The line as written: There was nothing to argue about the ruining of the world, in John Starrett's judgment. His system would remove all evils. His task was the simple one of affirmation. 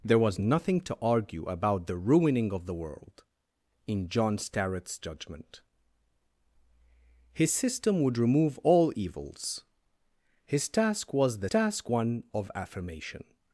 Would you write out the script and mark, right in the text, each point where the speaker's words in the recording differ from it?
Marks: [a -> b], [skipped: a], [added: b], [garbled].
There was nothing to argue about the ruining of the world, in John Starrett's judgment. His system would remove all evils. His task was the [simple -> task] one of affirmation.